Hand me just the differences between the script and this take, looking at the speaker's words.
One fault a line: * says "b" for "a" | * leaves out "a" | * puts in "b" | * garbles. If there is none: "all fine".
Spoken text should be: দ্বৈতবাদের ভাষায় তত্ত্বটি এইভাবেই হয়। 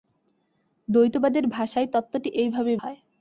all fine